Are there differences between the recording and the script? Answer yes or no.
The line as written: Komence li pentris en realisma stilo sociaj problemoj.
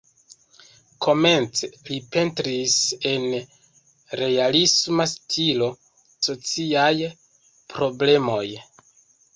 no